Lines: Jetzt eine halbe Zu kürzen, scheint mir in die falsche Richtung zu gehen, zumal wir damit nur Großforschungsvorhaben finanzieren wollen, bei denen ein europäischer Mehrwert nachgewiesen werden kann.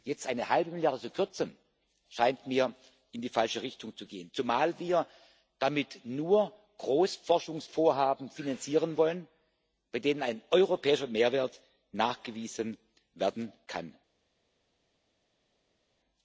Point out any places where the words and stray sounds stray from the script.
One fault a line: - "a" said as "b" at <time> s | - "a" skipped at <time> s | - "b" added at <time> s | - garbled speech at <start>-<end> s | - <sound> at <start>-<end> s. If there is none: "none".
- "Milliarde" added at 0.7 s